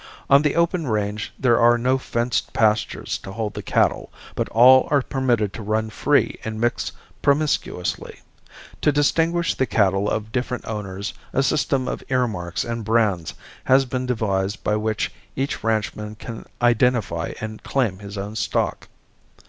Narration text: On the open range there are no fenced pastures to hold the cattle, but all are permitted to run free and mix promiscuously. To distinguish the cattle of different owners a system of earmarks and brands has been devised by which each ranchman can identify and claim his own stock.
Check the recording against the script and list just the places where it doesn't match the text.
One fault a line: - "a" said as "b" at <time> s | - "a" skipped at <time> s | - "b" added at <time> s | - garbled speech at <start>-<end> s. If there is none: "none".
none